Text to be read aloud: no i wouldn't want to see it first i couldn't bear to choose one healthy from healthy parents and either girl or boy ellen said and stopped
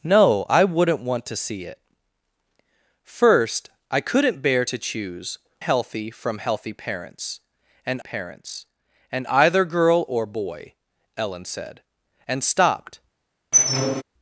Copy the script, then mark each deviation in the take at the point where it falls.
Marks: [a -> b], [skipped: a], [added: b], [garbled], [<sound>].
no i wouldn't want to see it first i couldn't bear to choose [skipped: one] healthy from healthy parents and [added: parents and] either girl or boy ellen said and stopped [squeak]